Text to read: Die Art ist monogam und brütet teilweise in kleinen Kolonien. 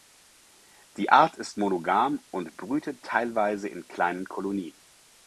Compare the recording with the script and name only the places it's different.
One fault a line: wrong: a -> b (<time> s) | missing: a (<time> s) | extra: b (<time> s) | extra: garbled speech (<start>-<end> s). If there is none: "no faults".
no faults